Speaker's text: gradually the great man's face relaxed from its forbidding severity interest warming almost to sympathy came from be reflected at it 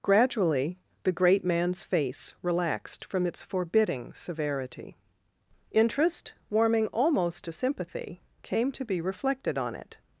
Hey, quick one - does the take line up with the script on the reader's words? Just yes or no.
no